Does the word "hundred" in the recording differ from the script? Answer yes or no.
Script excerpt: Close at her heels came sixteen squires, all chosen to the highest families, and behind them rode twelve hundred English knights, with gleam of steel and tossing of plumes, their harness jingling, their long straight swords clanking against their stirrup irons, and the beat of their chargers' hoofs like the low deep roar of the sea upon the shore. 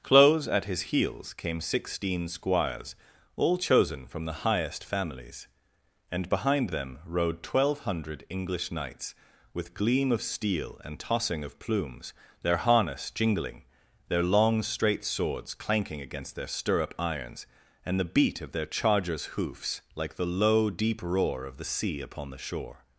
no